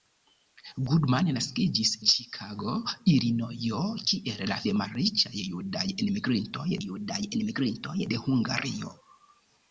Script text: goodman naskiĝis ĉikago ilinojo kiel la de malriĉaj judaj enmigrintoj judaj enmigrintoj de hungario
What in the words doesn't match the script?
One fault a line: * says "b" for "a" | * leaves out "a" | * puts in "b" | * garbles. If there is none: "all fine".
all fine